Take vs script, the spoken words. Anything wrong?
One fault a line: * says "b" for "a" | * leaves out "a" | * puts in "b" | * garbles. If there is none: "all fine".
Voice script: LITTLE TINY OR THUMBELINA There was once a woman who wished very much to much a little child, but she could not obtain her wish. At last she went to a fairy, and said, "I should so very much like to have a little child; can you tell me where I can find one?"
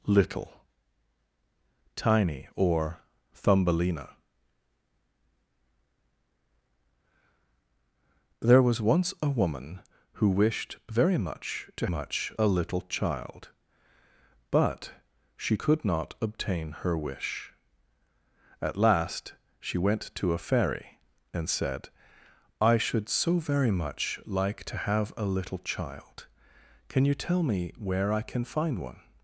all fine